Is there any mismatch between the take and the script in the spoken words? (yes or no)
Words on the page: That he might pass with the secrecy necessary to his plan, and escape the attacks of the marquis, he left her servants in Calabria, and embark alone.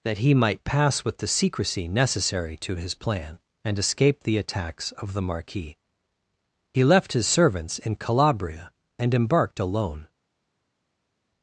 yes